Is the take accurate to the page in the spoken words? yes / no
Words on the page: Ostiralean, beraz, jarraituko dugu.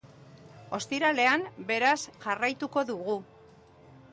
yes